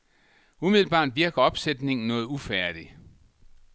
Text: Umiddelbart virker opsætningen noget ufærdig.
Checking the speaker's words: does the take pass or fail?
pass